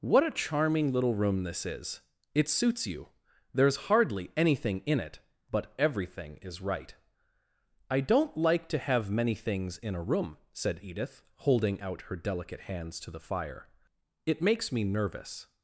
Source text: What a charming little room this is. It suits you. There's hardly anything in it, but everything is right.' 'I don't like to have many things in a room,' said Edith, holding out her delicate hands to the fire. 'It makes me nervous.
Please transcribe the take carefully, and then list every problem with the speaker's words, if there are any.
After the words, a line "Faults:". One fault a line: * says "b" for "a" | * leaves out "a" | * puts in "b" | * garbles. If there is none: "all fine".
What a charming little room this is. It suits you. There's hardly anything in it, but everything is right.' 'I don't like to have many things in a room,' said Edith, holding out her delicate hands to the fire. 'It makes me nervous.
Faults:
all fine